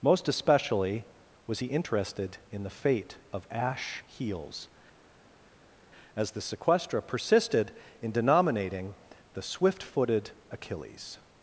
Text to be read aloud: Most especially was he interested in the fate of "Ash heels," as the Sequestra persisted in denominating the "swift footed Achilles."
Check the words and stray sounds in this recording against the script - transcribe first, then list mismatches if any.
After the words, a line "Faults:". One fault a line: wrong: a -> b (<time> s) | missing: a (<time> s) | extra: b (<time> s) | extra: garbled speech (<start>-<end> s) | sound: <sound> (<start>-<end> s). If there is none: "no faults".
Most especially was he interested in the fate of "Ash heels," as the Sequestra persisted in denominating the "swift footed Achilles."
Faults:
no faults